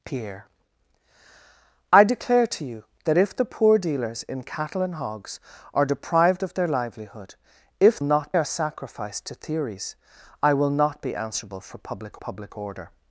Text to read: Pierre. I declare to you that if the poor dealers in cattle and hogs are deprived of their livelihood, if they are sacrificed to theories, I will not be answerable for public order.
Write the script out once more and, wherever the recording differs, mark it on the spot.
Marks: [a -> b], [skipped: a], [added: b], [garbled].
Pierre. I declare to you that if the poor dealers in cattle and hogs are deprived of their livelihood, if [they -> not] are sacrificed to theories, I will not be answerable for public [added: public] order.